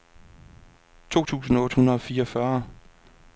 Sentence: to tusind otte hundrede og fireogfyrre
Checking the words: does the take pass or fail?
pass